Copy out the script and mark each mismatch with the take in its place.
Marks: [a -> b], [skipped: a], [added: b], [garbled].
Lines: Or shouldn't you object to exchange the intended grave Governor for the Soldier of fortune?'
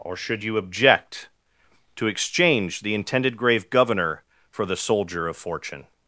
Or [shouldn't -> should] you object to exchange the intended grave Governor for the Soldier of fortune?'